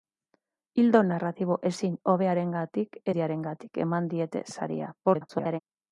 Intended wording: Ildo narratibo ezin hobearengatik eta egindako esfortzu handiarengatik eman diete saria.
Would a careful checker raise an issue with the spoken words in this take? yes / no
yes